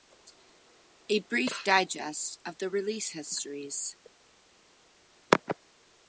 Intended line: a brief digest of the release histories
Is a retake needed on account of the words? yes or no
no